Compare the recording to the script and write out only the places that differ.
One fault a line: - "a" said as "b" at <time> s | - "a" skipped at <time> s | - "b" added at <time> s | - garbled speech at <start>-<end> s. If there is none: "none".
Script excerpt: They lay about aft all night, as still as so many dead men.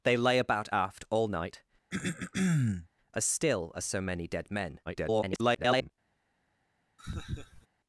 - garbled speech at 4.9-5.9 s